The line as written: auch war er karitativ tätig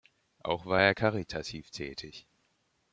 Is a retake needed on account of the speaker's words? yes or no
no